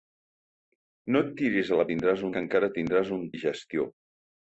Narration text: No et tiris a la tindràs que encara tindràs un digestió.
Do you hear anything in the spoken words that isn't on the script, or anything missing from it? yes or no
no